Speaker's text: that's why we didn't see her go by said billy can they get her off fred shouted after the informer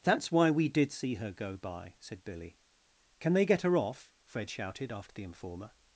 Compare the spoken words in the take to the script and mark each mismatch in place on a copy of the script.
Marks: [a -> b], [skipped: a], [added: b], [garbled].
that's why we [didn't -> did] see her go by said billy can they get her off fred shouted after the informer